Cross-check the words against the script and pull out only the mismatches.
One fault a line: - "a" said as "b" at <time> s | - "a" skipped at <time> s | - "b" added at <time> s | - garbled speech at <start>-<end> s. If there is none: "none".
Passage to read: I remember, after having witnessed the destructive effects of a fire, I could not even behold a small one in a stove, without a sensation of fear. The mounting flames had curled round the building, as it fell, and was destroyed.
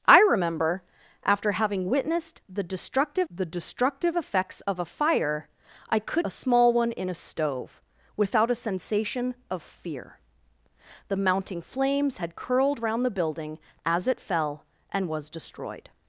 - "the destructive" added at 3.3 s
- "not even behold" skipped at 6.3 s